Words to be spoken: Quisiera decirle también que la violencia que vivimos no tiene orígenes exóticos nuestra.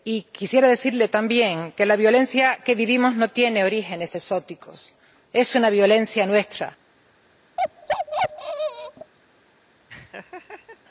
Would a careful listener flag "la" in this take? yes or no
no